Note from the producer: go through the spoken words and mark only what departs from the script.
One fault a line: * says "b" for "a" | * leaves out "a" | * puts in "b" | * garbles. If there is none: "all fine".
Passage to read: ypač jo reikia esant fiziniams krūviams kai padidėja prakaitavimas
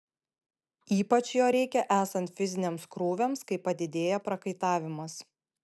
all fine